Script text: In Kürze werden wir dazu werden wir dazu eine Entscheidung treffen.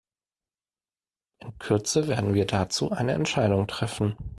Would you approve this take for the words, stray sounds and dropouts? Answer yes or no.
no